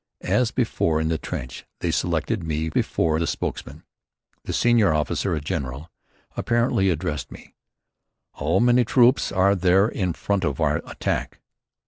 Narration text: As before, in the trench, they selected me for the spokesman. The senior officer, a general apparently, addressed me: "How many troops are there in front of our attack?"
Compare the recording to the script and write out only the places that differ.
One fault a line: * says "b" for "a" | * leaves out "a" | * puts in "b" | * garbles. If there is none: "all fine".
* says "before" for "for"